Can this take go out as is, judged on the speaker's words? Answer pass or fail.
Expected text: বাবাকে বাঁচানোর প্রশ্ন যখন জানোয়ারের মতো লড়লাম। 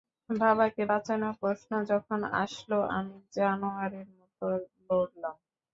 fail